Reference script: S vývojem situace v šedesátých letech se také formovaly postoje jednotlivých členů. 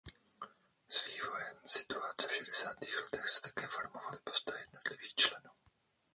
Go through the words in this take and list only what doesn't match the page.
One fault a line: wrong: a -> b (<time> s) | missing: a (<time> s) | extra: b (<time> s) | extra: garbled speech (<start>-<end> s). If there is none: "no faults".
no faults